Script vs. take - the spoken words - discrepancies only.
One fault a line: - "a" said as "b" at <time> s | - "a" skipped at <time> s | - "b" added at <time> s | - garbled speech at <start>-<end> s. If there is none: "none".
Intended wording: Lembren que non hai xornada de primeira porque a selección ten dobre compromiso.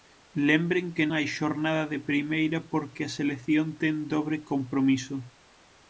- "non" skipped at 1.1 s